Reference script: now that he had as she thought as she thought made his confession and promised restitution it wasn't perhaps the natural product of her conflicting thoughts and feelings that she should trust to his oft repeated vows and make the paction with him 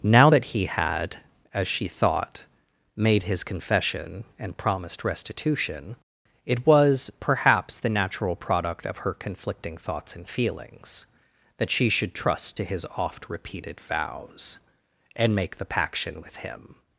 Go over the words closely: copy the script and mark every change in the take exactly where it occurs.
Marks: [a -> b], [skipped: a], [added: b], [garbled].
now that he had as she thought [skipped: as she thought] made his confession and promised restitution it [wasn't -> was] perhaps the natural product of her conflicting thoughts and feelings that she should trust to his oft repeated vows and make the paction with him